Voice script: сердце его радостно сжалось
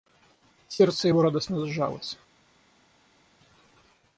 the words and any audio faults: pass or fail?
pass